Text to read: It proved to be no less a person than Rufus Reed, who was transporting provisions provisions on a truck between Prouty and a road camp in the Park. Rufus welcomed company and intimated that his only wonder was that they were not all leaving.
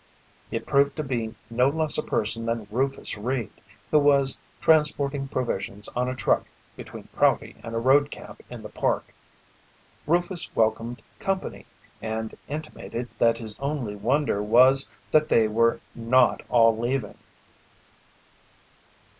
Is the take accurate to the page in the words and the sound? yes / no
no